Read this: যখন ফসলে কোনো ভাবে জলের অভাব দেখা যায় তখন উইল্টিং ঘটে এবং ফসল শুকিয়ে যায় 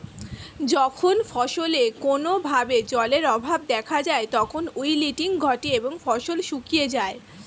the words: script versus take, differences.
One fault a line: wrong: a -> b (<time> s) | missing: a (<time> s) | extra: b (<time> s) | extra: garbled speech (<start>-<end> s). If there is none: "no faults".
no faults